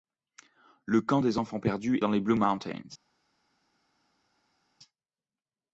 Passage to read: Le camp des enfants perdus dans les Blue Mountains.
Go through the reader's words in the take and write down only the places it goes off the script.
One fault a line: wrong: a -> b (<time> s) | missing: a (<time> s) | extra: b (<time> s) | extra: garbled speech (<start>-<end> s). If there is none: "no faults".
no faults